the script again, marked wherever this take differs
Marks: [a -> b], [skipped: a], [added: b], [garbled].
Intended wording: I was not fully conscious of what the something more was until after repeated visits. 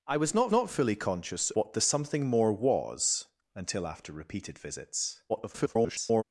I was not [added: not] fully conscious [skipped: of] what the something more was until after repeated visits. [garbled]